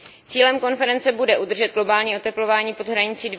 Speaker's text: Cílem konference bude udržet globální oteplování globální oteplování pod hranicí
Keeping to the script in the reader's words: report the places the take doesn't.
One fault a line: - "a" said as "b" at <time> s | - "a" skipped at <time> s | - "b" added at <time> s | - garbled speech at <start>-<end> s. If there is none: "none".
- "globální oteplování" skipped at 2.7 s